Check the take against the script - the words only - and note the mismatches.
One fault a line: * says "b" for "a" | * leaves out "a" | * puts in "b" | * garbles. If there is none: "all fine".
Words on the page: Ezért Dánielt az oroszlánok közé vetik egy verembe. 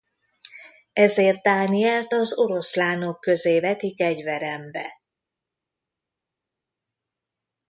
all fine